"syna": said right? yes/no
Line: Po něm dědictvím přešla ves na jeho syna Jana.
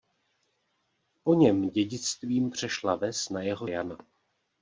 no